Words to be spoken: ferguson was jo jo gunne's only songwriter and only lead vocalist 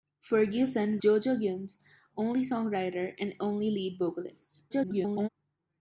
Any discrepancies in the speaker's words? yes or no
yes